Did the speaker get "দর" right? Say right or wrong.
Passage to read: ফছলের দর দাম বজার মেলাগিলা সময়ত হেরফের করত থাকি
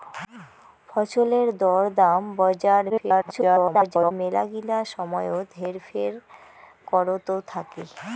right